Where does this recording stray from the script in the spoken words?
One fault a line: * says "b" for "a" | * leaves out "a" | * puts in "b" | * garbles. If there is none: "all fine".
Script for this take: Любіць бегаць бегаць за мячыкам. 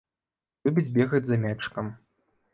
* leaves out "бегаць"